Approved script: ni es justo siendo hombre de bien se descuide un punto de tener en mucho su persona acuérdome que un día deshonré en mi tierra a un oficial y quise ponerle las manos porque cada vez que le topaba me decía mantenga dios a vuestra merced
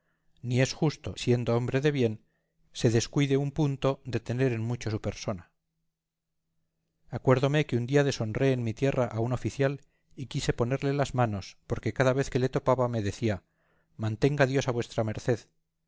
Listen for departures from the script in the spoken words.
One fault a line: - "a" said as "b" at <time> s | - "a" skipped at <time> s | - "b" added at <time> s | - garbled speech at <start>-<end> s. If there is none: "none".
none